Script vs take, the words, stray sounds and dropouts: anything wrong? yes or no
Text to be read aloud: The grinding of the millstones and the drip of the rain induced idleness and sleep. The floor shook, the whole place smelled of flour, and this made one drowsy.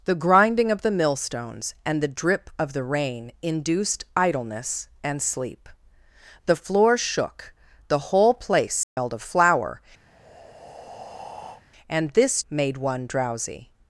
yes